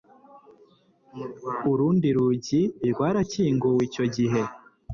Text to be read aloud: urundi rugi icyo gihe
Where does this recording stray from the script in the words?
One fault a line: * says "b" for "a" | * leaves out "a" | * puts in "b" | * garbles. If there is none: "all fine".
* puts in "rwarakinguwe"